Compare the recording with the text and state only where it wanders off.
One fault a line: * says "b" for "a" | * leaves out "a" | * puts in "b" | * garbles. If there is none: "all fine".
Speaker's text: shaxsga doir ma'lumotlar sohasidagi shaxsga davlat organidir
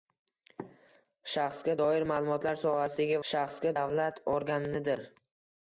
all fine